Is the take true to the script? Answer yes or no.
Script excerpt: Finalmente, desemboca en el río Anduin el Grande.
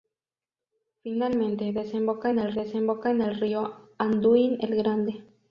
no